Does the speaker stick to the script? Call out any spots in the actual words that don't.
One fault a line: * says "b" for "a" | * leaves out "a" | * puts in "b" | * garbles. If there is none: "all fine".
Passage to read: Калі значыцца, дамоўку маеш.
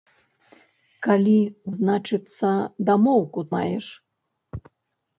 all fine